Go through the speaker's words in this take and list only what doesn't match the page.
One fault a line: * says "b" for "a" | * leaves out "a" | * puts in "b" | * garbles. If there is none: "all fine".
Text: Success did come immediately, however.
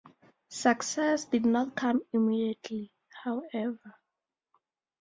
* puts in "not"